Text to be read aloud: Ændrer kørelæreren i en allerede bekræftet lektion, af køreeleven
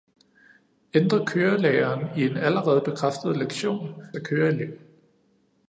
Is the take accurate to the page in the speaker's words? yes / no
yes